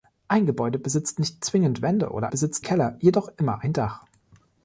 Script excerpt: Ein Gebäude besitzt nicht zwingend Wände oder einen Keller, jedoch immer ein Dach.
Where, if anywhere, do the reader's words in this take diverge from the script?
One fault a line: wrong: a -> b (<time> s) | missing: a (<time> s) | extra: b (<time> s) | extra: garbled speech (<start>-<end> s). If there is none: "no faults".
wrong: einen -> besitzt (2.3 s)